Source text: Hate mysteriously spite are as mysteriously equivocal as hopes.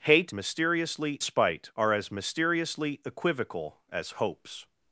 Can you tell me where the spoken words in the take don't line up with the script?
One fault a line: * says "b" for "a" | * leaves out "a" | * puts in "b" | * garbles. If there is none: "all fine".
all fine